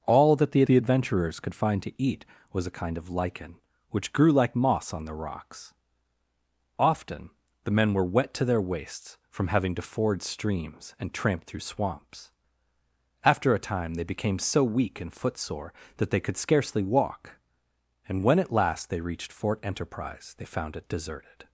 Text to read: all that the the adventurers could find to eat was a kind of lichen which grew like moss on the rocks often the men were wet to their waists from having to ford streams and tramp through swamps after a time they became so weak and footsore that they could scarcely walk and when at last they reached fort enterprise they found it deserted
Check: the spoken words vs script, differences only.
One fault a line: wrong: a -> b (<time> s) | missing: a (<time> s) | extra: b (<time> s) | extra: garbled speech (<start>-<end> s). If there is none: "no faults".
no faults